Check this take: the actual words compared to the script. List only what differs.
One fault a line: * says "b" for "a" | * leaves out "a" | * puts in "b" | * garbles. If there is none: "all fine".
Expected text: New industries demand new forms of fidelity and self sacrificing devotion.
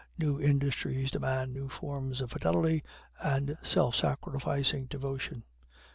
all fine